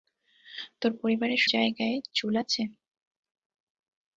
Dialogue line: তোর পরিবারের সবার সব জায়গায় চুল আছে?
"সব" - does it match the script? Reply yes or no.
no